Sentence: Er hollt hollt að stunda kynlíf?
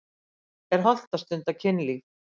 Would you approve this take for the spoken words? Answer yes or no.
no